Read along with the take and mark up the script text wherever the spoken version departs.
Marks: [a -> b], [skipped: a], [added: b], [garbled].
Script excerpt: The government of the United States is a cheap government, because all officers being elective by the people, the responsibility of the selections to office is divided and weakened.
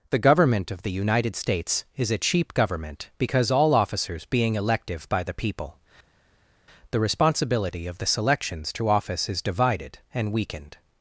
The government of the United States is a cheap government, because all officers being elective by the people, the responsibility of the selections to office is divided and weakened.